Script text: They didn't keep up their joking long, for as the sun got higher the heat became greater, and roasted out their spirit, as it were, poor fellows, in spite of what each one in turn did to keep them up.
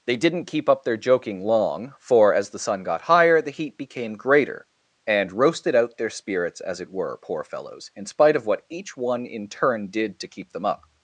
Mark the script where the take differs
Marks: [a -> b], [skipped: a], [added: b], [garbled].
They didn't keep up their joking long, for as the sun got higher the heat became greater, and roasted out their [spirit, -> spirits] as it were, poor fellows, in spite of what each one in turn did to keep them up.